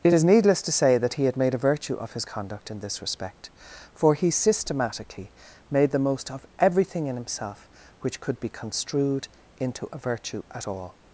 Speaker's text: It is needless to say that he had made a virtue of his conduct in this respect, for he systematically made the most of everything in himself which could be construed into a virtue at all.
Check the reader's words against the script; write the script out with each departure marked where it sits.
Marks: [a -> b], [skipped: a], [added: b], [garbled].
It is needless to say that he had made a virtue of his conduct in this respect, for he systematically made the most of everything in himself which could be construed into a virtue at all.